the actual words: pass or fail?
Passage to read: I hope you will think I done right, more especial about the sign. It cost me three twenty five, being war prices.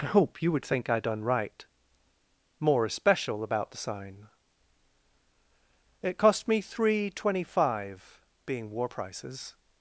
fail